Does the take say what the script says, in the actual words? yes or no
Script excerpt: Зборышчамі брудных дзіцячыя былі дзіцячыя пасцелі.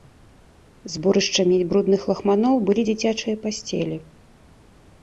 no